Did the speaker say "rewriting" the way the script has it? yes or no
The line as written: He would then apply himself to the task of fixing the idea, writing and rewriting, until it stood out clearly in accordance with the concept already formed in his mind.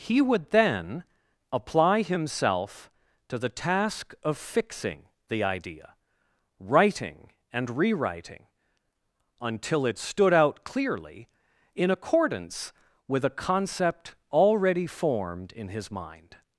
yes